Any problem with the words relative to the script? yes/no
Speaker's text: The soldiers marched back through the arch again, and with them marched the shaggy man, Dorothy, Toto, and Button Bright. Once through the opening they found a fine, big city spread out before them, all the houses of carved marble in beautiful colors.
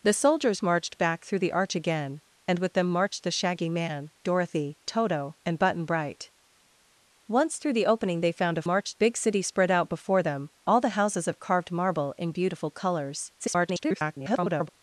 yes